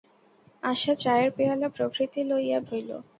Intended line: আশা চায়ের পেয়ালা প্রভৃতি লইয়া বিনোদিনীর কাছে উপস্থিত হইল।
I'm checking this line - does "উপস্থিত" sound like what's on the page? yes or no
no